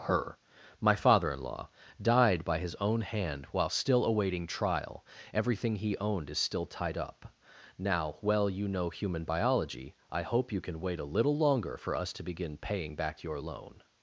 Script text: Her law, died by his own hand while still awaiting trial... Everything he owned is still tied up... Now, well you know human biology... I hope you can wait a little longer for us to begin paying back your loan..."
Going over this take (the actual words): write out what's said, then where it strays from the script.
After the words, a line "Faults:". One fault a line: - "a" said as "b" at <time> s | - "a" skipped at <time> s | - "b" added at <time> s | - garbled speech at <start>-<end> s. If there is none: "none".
Her my father in law, died by his own hand while still awaiting trial... Everything he owned is still tied up... Now, well you know human biology... I hope you can wait a little longer for us to begin paying back your loan..."
Faults:
- "my father in" added at 0.8 s